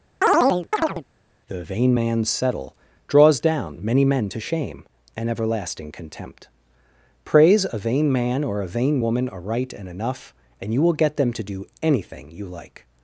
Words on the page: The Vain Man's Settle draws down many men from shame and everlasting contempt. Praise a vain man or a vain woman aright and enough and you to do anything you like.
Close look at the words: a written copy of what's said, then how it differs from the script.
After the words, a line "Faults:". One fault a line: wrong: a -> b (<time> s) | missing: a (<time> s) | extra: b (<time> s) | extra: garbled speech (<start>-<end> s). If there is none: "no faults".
The Vain Man's Settle draws down many men to shame and everlasting contempt. Praise a vain man or a vain woman aright and enough and you will get them to do anything you like.
Faults:
wrong: from -> to (4.3 s)
extra: will get them (10.8 s)